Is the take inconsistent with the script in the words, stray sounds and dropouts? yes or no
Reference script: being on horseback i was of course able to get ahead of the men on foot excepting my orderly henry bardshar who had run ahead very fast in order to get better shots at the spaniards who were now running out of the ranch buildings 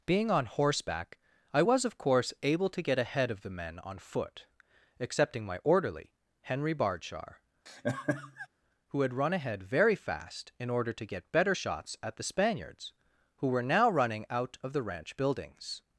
yes